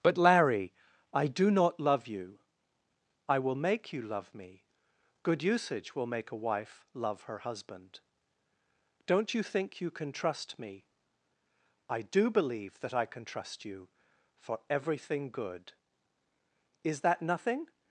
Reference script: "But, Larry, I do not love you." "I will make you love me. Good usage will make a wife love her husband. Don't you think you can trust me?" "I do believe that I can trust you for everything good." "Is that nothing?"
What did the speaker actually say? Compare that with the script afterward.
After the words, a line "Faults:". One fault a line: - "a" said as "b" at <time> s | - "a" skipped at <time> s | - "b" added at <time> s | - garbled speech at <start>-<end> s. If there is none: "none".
"But, Larry, I do not love you." "I will make you love me. Good usage will make a wife love her husband. Don't you think you can trust me?" "I do believe that I can trust you for everything good." "Is that nothing?"
Faults:
none